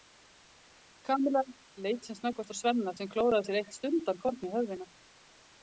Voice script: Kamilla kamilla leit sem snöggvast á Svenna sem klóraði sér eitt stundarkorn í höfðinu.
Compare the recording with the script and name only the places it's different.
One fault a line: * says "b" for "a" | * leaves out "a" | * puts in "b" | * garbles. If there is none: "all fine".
* leaves out "kamilla"